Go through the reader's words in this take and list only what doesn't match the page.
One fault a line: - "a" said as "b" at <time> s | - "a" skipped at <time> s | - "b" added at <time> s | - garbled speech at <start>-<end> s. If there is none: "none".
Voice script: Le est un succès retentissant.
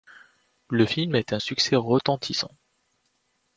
- "film" added at 0.8 s